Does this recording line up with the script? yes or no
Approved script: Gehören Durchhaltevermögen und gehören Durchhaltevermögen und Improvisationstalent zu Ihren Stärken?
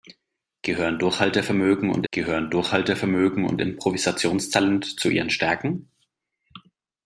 yes